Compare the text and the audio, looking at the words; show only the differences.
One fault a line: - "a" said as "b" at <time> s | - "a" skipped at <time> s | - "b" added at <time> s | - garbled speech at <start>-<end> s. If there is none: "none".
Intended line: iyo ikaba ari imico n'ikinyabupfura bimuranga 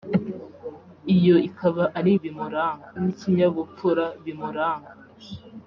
- "imico" said as "bimuranga" at 2.2 s